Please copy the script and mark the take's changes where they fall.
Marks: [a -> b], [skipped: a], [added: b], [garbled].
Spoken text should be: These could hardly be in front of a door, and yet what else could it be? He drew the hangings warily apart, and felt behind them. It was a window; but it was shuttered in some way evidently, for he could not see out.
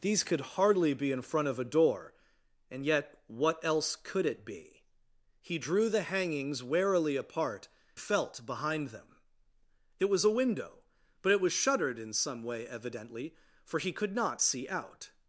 These could hardly be in front of a door, and yet what else could it be? He drew the hangings warily apart, [skipped: and] felt behind them. It was a window; but it was shuttered in some way evidently, for he could not see out.